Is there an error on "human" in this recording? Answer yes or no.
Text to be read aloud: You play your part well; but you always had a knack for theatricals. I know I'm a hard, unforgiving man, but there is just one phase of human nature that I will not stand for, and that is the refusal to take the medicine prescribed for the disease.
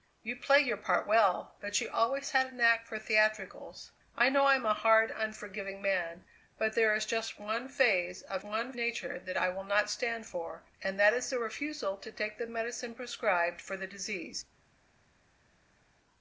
yes